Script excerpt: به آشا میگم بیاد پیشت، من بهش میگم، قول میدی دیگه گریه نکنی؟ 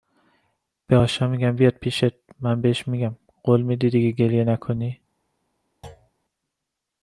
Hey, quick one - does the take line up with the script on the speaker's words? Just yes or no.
yes